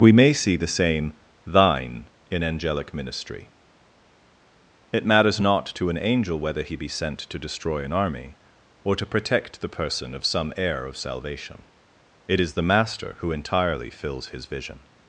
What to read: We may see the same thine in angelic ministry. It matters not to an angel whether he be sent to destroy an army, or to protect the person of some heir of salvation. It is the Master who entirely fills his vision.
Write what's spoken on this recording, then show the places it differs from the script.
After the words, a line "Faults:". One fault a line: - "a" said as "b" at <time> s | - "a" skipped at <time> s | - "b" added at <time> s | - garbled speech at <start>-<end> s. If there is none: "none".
We may see the same thine in angelic ministry. It matters not to an angel whether he be sent to destroy an army, or to protect the person of some heir of salvation. It is the Master who entirely fills his vision.
Faults:
none